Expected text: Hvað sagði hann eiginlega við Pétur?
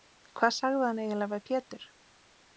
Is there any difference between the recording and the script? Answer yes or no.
no